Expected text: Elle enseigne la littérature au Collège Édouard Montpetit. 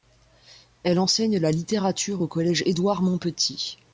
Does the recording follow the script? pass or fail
pass